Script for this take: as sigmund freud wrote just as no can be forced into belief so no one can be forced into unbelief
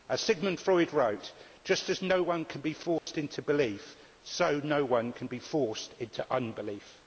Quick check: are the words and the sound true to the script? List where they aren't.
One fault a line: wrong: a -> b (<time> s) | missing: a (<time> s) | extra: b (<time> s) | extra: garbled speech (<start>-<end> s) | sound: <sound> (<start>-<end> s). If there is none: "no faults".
extra: one (2.2 s)
sound: dropout (3.0-3.1 s)